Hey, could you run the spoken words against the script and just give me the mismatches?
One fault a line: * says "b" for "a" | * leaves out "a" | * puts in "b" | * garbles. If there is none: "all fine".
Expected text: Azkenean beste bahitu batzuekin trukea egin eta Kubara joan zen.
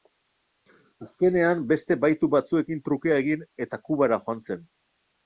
all fine